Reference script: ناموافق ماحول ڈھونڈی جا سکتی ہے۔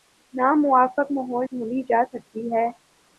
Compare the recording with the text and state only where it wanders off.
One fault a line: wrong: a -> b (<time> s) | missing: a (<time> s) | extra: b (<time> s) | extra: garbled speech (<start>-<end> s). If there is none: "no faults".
no faults